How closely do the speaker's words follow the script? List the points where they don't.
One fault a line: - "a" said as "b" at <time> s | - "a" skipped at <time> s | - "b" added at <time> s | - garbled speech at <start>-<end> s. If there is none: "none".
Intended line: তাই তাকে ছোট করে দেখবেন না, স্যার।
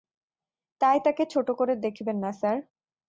none